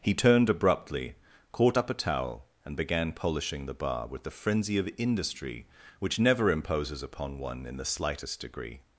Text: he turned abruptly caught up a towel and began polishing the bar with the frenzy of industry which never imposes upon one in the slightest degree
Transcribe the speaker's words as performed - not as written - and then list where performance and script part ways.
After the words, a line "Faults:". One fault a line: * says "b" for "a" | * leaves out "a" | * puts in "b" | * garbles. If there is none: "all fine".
he turned abruptly caught up a towel and began polishing the bar with the frenzy of industry which never imposes upon one in the slightest degree
Faults:
all fine